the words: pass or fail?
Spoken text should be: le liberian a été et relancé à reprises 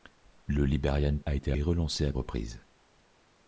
pass